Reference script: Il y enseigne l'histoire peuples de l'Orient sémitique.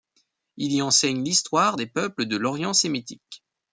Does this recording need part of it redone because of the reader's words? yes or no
yes